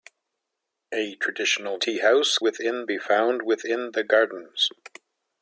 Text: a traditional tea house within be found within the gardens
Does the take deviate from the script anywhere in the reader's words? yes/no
no